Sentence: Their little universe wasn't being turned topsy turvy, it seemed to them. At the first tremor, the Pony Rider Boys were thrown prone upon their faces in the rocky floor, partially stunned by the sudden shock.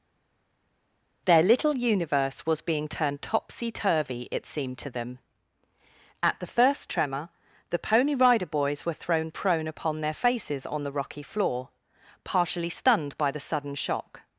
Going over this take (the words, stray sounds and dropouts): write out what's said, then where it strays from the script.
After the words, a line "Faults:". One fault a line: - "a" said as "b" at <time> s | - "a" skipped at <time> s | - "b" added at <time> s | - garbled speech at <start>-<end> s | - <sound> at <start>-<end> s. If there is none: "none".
Their little universe was being turned topsy turvy, it seemed to them. At the first tremor, the Pony Rider Boys were thrown prone upon their faces on the rocky floor, partially stunned by the sudden shock.
Faults:
- "wasn't" said as "was" at 2.4 s
- "in" said as "on" at 10.7 s